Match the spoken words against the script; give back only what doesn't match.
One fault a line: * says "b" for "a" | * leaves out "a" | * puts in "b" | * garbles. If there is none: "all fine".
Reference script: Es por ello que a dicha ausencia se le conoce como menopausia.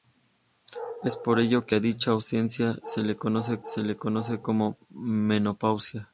* puts in "se le conoce"